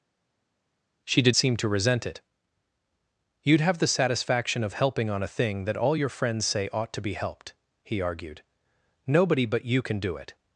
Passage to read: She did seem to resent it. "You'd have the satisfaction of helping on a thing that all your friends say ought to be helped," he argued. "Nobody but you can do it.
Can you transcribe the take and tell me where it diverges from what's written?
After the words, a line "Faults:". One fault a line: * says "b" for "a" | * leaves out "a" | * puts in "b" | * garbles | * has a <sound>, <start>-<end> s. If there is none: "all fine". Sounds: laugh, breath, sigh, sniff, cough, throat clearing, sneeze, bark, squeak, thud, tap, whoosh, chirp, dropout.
She did seem to resent it. "You'd have the satisfaction of helping on a thing that all your friends say ought to be helped," he argued. "Nobody but you can do it.
Faults:
all fine